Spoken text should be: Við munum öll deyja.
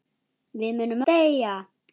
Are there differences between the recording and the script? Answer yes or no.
yes